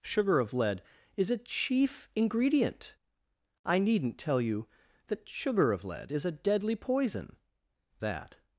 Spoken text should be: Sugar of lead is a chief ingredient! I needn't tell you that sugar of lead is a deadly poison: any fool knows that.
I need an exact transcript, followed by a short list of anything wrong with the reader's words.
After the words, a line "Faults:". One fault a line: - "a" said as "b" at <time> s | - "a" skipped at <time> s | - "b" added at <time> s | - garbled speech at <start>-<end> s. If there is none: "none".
Sugar of lead is a chief ingredient! I needn't tell you that sugar of lead is a deadly poison: that.
Faults:
- "any fool knows" skipped at 7.3 s